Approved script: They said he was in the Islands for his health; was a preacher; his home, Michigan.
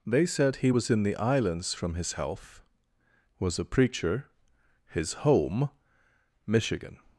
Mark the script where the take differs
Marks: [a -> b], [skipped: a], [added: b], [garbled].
They said he was in the Islands [for -> from] his health; was a preacher; his home, Michigan.